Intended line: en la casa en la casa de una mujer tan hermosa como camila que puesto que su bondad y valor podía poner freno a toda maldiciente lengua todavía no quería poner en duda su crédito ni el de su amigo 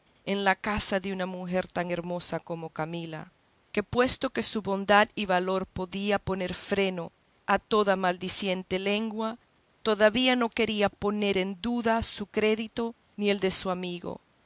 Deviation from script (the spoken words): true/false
true